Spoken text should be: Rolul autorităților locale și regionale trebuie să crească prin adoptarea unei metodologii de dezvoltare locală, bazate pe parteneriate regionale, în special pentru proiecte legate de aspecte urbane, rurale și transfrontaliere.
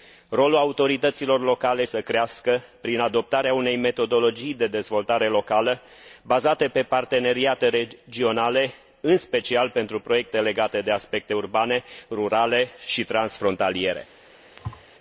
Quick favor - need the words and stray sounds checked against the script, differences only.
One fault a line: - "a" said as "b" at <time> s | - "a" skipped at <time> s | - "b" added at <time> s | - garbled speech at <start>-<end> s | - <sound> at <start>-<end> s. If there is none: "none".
- "și regionale trebuie" skipped at 1.9 s
- thud at 14.6-14.8 s